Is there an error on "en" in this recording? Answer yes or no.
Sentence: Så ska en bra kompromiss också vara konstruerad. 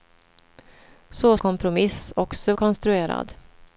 yes